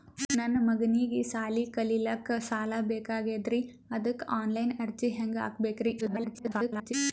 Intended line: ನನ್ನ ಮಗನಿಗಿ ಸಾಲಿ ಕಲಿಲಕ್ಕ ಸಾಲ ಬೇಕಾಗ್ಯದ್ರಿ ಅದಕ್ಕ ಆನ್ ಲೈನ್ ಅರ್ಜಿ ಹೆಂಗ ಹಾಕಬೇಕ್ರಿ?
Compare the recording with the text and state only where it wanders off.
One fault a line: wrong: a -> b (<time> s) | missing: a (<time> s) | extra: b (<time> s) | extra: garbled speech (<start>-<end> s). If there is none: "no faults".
extra: garbled speech (6.0-6.9 s)